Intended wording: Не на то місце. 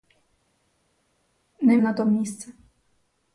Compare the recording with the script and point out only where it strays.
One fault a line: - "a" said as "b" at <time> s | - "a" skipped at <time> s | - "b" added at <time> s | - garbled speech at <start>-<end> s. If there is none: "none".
none